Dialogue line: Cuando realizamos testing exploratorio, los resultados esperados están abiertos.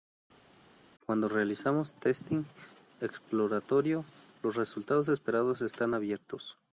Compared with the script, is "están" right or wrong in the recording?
right